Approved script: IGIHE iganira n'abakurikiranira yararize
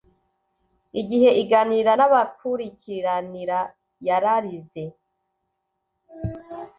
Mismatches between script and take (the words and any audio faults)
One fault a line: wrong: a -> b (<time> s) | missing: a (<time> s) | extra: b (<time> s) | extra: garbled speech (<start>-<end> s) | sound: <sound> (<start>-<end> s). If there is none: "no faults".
no faults